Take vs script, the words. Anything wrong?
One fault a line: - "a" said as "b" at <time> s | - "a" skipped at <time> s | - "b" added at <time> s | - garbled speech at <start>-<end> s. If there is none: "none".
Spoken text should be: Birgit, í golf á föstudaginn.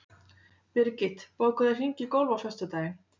- "bókaðu hring" added at 1.4 s